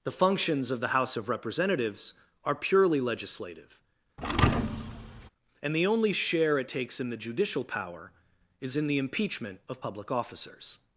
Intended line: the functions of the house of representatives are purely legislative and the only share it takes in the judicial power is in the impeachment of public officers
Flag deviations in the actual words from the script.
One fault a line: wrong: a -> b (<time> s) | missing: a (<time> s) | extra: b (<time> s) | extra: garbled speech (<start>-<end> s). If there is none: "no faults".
no faults